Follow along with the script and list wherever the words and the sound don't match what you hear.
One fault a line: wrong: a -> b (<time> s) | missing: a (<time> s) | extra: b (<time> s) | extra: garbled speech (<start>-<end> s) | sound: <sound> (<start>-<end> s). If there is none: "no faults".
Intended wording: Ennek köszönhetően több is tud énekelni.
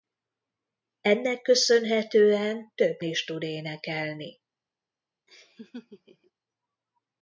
sound: laugh (5.3-6.3 s)